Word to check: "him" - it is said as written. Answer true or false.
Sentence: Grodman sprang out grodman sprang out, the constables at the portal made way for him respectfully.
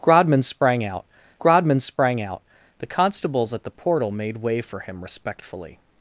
true